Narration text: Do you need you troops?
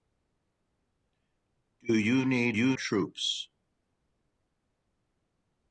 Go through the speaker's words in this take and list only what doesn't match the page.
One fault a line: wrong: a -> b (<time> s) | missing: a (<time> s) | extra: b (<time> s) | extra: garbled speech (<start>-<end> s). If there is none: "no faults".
no faults